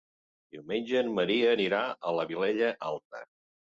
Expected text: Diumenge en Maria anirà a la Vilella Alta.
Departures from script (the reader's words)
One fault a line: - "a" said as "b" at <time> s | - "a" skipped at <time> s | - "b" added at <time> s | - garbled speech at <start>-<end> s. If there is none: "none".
none